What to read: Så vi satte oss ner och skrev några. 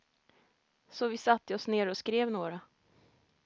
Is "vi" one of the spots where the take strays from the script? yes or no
no